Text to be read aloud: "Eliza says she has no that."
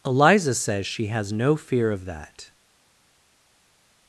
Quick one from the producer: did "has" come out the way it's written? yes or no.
yes